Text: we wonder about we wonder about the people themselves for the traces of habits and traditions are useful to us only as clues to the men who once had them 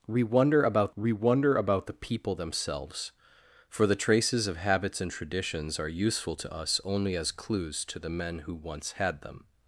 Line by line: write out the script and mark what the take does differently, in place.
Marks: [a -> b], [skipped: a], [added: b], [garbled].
we wonder about we wonder about the people themselves for the traces of habits and traditions are useful to us only as clues to the men who once had them